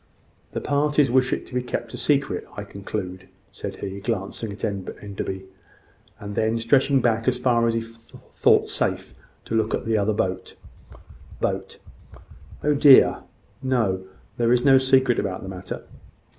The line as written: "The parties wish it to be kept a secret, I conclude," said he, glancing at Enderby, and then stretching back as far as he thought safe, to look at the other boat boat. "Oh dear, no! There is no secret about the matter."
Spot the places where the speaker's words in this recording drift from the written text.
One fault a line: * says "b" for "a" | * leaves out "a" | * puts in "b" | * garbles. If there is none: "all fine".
all fine